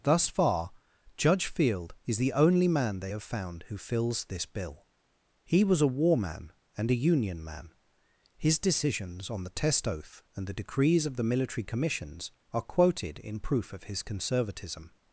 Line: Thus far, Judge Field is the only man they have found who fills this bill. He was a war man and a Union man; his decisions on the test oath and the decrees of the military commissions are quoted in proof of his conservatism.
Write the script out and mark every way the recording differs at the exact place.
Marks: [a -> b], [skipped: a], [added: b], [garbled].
Thus far, Judge Field is the only man they have found who fills this bill. He was a war man and a Union man; his decisions on the test oath and the decrees of the military commissions are quoted in proof of his conservatism.